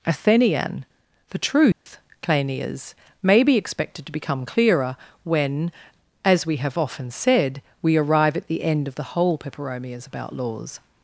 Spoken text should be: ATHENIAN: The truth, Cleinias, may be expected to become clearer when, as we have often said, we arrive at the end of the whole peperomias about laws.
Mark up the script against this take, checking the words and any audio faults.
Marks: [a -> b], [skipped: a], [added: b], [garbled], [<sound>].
ATHENIAN: The truth, [dropout] Cleinias, may be expected to become clearer when, as we have often said, we arrive at the end of the whole peperomias about laws.